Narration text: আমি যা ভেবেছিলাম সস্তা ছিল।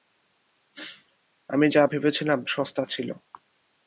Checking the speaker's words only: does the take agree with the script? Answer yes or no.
yes